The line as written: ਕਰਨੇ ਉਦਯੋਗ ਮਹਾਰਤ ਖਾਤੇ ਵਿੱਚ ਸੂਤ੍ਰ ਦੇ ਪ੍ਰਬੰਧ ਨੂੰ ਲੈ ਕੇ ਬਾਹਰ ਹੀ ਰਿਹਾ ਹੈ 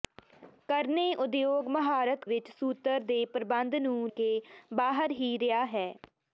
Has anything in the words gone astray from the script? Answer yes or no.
yes